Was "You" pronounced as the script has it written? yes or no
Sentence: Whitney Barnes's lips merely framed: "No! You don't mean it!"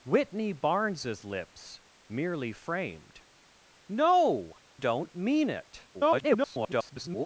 no